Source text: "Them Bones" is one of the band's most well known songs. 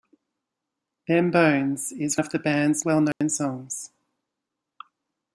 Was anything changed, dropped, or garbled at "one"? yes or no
yes